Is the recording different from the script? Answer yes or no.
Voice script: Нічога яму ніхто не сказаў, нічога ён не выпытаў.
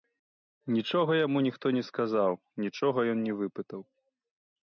no